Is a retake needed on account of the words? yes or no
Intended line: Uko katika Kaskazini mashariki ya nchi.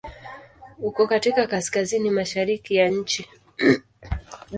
no